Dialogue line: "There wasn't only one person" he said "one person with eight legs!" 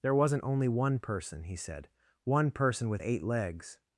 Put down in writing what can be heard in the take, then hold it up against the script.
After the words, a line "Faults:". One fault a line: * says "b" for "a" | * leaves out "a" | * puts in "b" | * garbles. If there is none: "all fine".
"There wasn't only one person" he said "one person with eight legs!"
Faults:
all fine